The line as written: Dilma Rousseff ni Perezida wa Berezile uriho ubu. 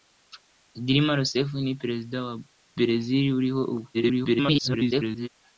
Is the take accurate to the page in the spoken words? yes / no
no